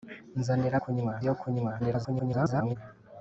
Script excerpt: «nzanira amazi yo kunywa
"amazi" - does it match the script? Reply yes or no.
no